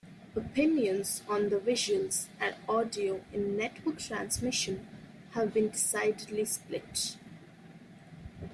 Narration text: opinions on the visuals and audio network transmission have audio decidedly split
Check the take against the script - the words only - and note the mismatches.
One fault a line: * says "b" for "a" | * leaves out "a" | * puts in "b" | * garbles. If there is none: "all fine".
* puts in "in"
* says "been" for "audio"